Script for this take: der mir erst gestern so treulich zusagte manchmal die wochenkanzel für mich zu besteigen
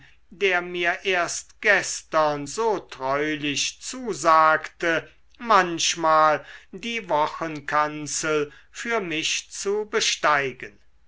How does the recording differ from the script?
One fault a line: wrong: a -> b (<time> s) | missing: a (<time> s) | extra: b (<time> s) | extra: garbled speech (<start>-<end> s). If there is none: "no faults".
no faults